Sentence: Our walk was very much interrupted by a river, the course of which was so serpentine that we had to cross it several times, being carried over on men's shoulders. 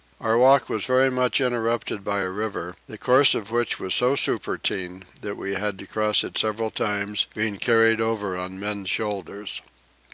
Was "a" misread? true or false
false